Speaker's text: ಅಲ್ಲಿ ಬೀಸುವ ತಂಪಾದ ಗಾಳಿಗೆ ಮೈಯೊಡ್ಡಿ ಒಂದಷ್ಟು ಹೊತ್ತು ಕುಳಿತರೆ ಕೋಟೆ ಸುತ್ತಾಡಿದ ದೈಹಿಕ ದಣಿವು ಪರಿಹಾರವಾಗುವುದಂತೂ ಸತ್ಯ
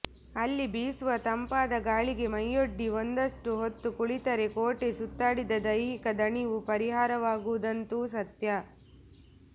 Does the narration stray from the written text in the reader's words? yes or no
no